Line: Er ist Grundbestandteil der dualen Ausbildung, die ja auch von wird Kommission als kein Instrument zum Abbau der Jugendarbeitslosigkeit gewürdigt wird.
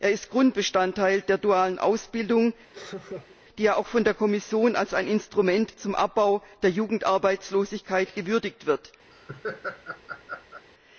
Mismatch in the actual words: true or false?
true